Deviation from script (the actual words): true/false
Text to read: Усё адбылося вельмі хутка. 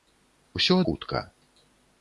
true